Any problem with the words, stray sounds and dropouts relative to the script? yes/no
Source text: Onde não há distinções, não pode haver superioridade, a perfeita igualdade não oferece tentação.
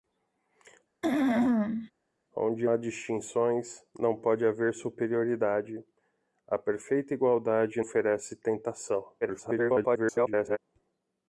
yes